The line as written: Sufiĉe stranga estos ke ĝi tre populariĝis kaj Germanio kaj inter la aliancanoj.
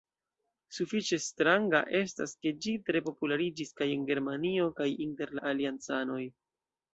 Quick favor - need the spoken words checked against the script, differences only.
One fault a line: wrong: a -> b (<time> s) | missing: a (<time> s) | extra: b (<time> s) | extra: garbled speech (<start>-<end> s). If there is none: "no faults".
wrong: estos -> estas (2.0 s)
extra: en (4.0 s)